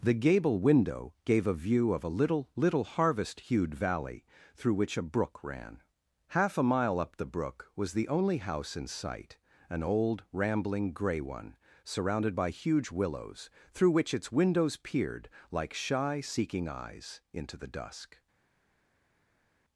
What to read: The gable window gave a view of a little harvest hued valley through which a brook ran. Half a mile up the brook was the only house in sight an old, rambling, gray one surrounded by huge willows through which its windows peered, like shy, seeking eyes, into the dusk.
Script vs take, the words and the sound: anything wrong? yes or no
yes